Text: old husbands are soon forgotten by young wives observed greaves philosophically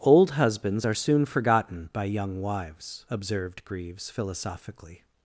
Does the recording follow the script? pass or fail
pass